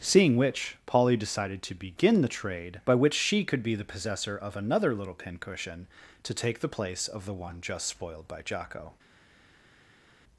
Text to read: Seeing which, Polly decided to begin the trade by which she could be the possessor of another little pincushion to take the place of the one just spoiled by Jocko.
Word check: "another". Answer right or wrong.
right